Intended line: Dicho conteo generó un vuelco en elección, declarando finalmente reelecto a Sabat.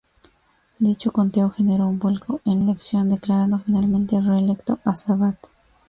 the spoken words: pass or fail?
pass